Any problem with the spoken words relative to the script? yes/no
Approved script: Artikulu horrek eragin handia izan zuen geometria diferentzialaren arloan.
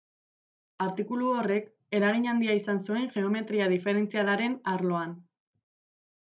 no